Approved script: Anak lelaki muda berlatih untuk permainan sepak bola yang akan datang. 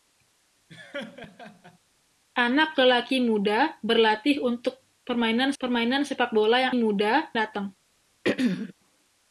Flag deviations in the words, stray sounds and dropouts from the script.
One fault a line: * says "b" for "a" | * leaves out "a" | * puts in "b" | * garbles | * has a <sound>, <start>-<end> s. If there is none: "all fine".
* has a laugh, 0.7-1.8 s
* puts in "permainan"
* says "muda" for "akan"
* has a throat clearing, 8.2-8.7 s